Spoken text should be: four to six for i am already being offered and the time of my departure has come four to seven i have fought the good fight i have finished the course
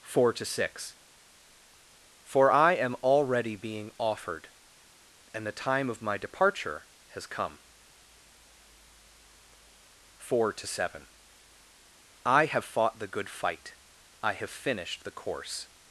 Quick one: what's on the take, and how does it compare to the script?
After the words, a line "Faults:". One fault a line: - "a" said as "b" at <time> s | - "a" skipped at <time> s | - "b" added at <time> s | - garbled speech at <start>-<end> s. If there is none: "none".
four to six for i am already being offered and the time of my departure has come four to seven i have fought the good fight i have finished the course
Faults:
none